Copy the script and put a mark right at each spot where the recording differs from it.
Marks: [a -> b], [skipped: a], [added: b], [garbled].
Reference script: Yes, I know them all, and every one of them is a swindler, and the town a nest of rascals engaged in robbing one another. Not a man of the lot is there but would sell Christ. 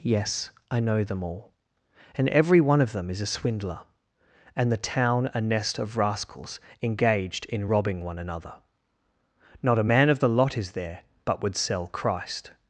Yes, I know them all, and every one of them is a swindler, and the town a nest of rascals engaged in robbing one another. Not a man of the lot is there but would sell Christ.